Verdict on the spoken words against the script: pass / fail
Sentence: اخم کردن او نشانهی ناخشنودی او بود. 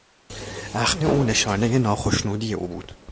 fail